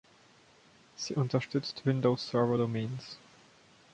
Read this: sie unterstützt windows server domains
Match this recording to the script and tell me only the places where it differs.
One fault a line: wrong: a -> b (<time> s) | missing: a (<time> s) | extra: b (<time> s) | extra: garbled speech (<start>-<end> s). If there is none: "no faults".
no faults